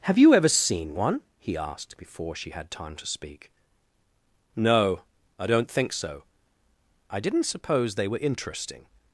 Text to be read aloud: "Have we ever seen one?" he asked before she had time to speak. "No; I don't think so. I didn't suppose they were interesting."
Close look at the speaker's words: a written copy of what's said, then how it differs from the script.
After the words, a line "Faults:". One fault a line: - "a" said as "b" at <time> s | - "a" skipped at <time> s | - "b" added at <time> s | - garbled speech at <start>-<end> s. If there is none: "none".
"Have you ever seen one?" he asked before she had time to speak. "No; I don't think so. I didn't suppose they were interesting."
Faults:
- "we" said as "you" at 0.2 s